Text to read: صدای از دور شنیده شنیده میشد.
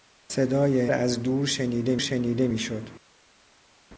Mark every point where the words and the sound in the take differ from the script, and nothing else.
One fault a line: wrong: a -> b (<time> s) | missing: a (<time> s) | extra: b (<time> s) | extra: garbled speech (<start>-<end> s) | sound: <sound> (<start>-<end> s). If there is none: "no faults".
no faults